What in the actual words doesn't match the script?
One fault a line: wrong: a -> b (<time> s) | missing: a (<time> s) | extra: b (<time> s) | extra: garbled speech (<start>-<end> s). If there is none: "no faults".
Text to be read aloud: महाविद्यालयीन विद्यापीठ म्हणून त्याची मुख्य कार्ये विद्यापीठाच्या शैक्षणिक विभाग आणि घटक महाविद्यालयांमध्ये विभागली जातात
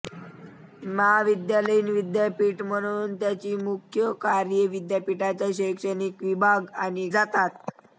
missing: घटक महाविद्यालयांमध्ये विभागली (7.1 s)